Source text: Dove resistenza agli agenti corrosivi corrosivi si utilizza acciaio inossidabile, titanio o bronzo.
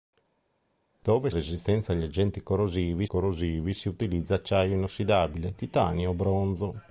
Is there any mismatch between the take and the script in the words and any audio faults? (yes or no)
no